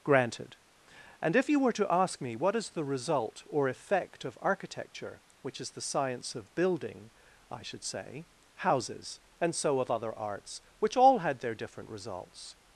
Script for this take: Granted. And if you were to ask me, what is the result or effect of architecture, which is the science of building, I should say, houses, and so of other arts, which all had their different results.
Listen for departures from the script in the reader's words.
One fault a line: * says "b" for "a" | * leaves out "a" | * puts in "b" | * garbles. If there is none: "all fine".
all fine